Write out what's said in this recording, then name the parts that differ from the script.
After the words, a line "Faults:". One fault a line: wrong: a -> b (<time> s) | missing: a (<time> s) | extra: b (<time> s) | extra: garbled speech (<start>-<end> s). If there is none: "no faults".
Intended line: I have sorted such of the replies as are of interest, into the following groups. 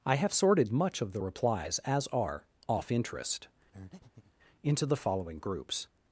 I have sorted much of the replies as are off interest, into the following groups.
Faults:
wrong: such -> much (0.7 s)
wrong: of -> off (2.7 s)